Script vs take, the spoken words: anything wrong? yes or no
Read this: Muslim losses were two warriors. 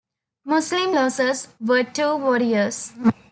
no